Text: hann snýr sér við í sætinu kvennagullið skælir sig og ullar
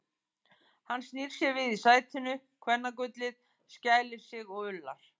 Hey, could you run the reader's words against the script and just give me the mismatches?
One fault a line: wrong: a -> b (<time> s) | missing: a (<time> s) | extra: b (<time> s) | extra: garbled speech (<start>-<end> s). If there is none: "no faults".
no faults